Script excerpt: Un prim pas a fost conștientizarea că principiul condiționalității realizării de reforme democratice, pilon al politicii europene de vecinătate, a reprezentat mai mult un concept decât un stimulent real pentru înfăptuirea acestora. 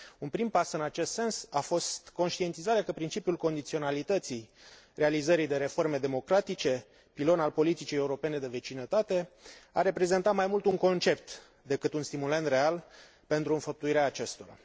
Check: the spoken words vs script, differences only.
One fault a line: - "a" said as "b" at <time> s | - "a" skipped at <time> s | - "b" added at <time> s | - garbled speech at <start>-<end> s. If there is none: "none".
- "în acest sens" added at 0.7 s